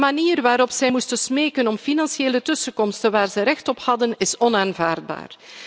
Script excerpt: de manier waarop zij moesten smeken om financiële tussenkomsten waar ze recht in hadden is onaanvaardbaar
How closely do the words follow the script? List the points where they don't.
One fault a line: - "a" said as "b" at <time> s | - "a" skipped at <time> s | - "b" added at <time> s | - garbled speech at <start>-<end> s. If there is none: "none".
- "in" said as "op" at 3.7 s